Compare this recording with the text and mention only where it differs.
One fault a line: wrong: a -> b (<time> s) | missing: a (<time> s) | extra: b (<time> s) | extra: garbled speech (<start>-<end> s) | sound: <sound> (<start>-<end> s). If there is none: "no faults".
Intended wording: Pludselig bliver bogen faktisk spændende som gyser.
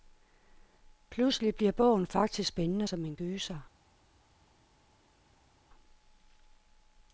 extra: en (3.0 s)